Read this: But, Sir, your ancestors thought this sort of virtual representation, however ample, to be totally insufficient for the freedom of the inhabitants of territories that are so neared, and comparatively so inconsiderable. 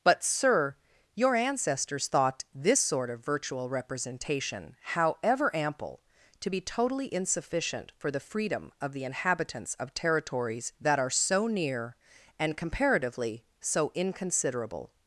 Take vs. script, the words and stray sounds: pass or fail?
fail